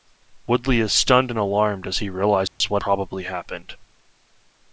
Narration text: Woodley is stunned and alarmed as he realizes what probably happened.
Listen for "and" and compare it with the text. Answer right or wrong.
right